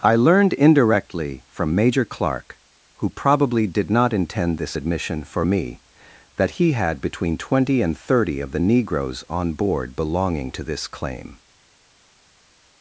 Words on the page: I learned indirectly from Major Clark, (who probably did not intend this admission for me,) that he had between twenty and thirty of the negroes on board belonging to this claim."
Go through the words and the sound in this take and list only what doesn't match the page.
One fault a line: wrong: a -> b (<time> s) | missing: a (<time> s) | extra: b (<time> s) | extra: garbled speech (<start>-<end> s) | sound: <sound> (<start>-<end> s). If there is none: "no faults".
no faults